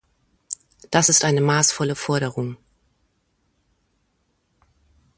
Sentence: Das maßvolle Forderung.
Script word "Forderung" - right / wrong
right